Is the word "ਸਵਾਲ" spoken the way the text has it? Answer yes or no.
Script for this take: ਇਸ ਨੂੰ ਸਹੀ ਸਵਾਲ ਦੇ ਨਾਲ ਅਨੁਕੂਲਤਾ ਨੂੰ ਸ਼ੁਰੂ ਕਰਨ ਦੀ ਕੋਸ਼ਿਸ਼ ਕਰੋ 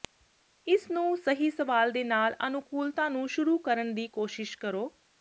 yes